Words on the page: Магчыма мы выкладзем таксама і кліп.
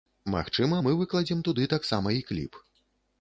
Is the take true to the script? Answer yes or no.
no